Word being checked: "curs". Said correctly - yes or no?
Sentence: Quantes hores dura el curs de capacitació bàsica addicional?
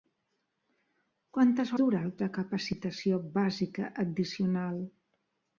no